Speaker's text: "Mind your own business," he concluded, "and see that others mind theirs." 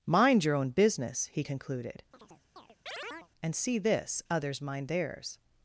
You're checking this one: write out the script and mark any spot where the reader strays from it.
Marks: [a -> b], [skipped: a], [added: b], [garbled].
"Mind your own business," he concluded, "and see [that -> this] others mind theirs."